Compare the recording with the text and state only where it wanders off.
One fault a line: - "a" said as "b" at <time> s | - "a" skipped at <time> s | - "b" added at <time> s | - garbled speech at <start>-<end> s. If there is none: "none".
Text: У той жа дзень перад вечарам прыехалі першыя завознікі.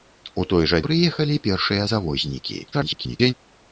- "дзень перад вечарам" skipped at 0.8 s
- garbled speech at 2.7-3.3 s